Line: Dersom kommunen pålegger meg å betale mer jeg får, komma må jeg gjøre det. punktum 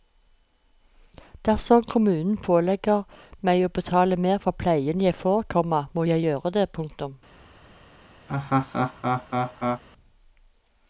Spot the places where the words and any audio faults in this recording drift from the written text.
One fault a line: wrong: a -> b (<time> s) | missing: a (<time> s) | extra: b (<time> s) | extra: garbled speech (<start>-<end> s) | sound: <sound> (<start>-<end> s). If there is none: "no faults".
extra: for pleien (4.5 s)
sound: laugh (8.3-9.8 s)